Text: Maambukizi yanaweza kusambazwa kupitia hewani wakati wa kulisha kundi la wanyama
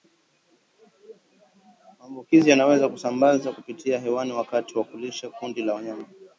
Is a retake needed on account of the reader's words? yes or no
no